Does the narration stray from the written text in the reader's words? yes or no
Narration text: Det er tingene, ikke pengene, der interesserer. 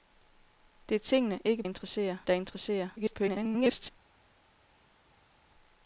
yes